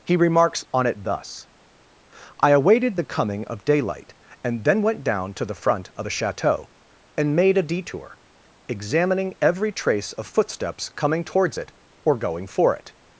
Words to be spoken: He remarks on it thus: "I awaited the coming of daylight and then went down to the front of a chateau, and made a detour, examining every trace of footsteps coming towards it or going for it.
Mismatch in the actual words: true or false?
false